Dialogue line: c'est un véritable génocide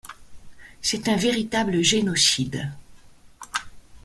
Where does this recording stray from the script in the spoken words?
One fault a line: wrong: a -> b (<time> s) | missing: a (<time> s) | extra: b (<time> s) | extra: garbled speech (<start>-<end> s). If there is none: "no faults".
no faults